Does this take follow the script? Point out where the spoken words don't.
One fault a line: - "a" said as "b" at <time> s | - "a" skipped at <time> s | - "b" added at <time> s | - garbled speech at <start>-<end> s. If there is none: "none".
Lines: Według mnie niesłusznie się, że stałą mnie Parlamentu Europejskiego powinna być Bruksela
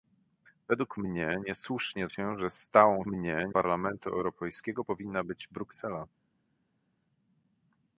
none